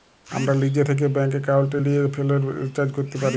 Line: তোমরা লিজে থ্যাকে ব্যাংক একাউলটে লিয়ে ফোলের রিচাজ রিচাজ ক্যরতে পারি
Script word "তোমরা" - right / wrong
wrong